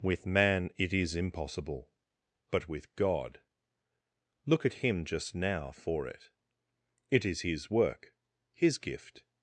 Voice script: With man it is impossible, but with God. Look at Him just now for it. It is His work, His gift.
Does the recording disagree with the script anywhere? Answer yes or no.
no